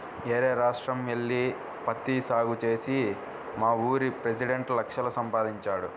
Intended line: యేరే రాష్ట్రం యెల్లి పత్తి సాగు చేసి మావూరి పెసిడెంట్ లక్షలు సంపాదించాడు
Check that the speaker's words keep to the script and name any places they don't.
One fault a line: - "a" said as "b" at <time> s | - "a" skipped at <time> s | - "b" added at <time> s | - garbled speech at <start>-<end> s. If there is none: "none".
none